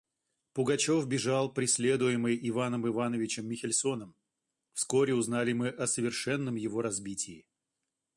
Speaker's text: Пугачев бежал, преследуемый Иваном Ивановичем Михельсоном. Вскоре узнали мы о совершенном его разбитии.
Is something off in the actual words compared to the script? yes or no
no